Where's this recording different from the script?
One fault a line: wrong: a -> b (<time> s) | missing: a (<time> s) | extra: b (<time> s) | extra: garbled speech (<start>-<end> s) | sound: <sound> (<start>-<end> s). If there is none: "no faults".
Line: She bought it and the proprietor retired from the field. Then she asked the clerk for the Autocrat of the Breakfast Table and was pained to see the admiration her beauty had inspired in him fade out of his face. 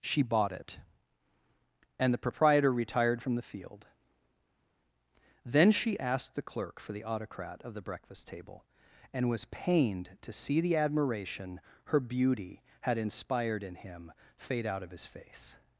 no faults